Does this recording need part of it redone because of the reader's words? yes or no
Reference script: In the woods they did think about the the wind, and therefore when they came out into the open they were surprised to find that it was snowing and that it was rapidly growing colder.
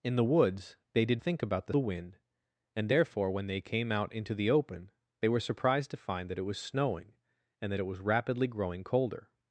no